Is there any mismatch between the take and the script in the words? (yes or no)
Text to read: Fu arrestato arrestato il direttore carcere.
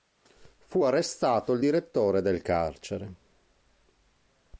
yes